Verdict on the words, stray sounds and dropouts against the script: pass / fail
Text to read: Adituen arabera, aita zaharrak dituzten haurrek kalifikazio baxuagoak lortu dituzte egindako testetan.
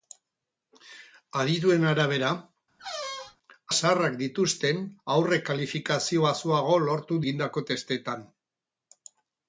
fail